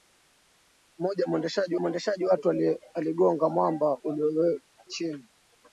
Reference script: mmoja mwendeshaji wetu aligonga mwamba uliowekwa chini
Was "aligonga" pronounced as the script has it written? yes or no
yes